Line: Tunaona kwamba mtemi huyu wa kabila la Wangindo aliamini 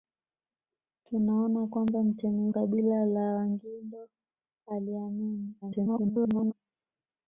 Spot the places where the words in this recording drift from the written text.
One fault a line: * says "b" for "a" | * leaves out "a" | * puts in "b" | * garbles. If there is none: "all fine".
* leaves out "huyu wa"
* garbles